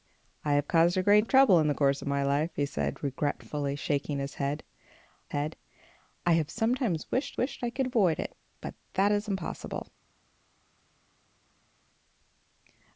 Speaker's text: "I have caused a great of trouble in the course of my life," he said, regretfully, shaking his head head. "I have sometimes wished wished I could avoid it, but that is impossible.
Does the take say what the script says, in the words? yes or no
yes